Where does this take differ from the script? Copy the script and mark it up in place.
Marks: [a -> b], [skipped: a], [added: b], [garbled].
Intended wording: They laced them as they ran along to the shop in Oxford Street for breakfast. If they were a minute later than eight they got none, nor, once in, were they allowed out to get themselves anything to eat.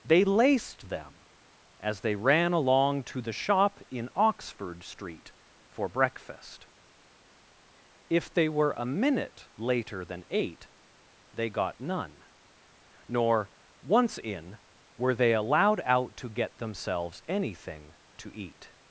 They laced them as they ran along to the shop in Oxford Street for breakfast. If they were a minute later than eight they got none, nor, once in, were they allowed out to get themselves anything to eat.